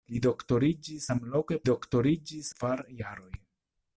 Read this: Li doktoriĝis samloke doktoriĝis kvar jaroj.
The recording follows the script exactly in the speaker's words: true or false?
true